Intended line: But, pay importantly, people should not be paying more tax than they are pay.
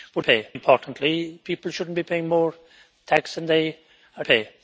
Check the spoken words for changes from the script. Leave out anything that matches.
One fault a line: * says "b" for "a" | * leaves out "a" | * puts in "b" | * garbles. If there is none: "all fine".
all fine